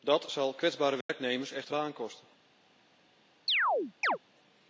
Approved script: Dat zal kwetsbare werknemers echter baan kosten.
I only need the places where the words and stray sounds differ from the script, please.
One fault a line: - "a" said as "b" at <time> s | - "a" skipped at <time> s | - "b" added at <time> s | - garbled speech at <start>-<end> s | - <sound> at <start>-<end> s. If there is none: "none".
- dropout at 1.0-1.1 s
- chirp at 3.5-4.2 s